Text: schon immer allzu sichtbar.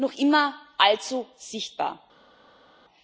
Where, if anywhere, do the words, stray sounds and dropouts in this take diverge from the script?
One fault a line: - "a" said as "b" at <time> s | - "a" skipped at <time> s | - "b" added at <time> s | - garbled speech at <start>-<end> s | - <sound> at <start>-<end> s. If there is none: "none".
- "schon" said as "noch" at 0.0 s